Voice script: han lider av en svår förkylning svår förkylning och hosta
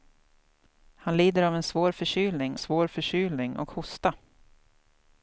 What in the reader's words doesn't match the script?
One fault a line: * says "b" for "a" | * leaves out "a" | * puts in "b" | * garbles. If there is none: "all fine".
all fine